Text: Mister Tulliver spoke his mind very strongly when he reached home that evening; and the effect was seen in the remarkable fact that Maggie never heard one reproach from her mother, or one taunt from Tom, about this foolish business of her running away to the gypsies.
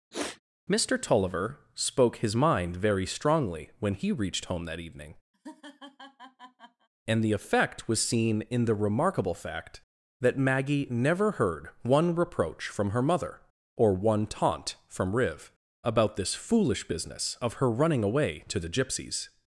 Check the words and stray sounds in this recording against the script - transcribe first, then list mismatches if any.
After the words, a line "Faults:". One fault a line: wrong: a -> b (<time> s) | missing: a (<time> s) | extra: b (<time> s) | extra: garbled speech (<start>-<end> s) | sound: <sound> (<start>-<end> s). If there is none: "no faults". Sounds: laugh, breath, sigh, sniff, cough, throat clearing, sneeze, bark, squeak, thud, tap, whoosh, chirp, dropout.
Mister Tulliver spoke his mind very strongly when he reached home that evening; and the effect was seen in the remarkable fact that Maggie never heard one reproach from her mother, or one taunt from Riv, about this foolish business of her running away to the gypsies.
Faults:
sound: sniff (0.1-0.4 s)
sound: laugh (5.3-6.9 s)
wrong: Tom -> Riv (15.2 s)